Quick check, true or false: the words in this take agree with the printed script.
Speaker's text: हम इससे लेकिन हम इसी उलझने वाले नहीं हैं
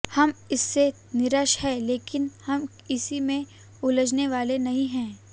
false